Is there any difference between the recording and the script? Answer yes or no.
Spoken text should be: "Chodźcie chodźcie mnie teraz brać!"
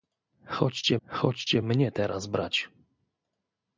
no